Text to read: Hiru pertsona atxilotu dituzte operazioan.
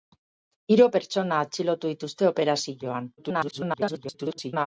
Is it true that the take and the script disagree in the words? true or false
true